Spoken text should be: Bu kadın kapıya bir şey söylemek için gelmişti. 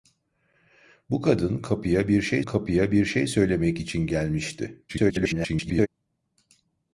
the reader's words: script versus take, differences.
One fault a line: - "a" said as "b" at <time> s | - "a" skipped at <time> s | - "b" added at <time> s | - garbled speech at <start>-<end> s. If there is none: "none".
- "kapıya bir şey" added at 2.4 s
- garbled speech at 4.9-5.9 s